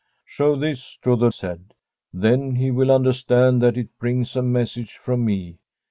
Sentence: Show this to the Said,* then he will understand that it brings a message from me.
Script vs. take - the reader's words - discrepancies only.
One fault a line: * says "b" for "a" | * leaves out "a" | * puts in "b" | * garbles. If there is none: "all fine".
all fine